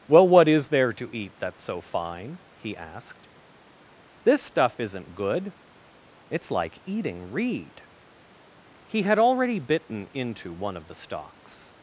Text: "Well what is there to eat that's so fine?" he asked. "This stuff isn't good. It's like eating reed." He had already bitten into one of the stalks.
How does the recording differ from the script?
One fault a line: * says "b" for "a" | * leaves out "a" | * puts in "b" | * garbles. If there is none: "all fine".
all fine